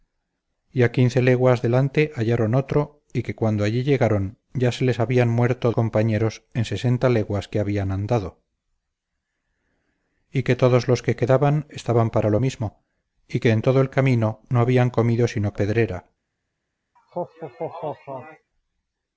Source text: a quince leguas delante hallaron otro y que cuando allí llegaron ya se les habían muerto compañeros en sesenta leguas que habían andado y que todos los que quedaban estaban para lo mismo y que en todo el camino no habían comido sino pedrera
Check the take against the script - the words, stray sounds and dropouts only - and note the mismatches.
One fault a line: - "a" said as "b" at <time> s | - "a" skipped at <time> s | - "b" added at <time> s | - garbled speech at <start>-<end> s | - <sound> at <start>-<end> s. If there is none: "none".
- laugh at 17.0-18.5 s